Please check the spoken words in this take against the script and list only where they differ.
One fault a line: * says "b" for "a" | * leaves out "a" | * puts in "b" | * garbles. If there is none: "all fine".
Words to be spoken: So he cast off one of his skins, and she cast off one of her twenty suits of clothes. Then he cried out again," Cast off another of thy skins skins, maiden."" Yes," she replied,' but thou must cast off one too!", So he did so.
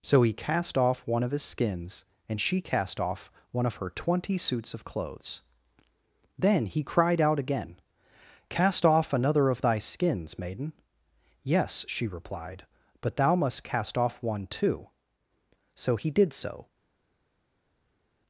* leaves out "skins"